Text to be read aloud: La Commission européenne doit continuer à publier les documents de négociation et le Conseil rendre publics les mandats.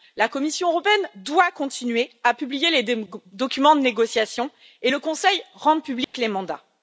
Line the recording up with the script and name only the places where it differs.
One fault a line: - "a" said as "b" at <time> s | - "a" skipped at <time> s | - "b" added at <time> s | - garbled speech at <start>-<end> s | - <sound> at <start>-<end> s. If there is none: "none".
- dropout at 6.0-6.1 s